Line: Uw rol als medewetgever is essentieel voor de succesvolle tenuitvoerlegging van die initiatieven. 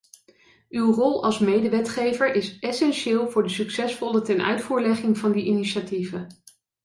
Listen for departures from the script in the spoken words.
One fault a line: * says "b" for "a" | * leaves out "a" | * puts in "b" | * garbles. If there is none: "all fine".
all fine